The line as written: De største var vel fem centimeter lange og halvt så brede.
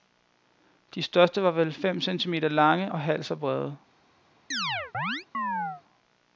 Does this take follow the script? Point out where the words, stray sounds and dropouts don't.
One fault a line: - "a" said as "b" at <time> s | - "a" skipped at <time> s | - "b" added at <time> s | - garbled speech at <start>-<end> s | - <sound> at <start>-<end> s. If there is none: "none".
- chirp at 4.5-5.8 s